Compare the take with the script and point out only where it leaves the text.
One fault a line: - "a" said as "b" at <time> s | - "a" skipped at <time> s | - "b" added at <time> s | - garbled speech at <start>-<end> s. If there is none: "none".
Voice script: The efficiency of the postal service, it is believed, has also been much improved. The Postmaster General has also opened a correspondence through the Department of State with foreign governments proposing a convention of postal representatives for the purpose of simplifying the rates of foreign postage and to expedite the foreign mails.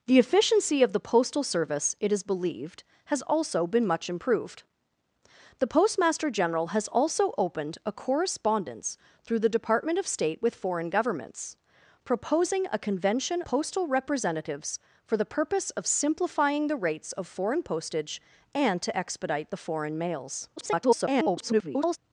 - "of" skipped at 13.4 s
- garbled speech at 20.6-22.0 s